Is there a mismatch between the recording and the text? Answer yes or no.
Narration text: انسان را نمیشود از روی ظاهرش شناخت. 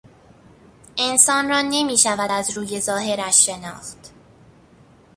no